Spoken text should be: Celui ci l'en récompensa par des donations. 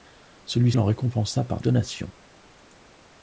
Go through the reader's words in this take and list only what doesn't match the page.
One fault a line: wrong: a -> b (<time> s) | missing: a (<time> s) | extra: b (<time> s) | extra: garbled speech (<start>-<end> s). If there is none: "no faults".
missing: ci (0.7 s)
missing: des (1.6 s)